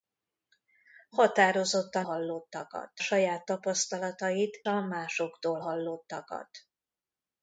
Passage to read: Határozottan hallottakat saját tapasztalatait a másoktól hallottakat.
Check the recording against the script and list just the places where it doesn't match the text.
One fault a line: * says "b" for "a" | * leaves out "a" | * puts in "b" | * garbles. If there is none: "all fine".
all fine